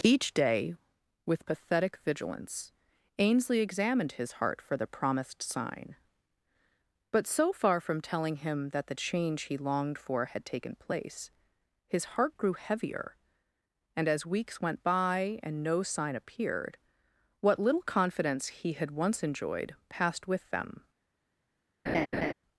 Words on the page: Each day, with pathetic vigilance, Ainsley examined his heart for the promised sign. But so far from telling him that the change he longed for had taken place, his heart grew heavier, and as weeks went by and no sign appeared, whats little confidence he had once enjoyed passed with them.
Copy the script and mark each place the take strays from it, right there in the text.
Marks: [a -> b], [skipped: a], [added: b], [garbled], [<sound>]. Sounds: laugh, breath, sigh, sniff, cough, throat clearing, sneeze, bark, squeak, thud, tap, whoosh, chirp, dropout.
Each day, with pathetic vigilance, Ainsley examined his heart for the promised sign. But so far from telling him that the change he longed for had taken place, his heart grew heavier, and as weeks went by and no sign appeared, [whats -> what] little confidence he had once enjoyed passed with them. [laugh]